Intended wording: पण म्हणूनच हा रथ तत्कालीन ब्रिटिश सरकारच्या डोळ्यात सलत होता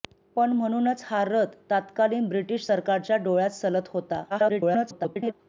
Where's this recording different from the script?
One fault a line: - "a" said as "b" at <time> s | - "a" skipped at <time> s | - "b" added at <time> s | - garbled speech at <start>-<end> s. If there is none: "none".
- garbled speech at 4.3-5.3 s